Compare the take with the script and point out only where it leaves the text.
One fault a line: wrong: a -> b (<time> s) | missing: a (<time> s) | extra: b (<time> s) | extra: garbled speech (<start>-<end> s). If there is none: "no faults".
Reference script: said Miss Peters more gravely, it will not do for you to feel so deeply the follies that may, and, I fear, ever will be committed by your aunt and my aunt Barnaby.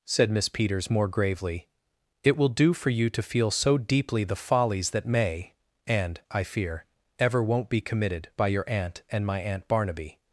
missing: not (2.5 s)
wrong: will -> won't (7.4 s)